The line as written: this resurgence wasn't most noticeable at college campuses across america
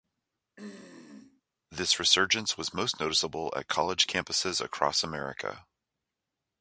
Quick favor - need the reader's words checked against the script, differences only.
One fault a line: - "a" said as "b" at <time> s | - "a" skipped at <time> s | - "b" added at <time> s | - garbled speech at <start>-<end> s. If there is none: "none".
- "wasn't" said as "was" at 2.6 s